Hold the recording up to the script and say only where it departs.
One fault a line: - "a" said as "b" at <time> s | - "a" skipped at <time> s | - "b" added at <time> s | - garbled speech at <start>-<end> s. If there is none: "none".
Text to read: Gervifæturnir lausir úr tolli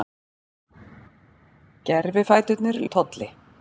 - "lausir" skipped at 2.8 s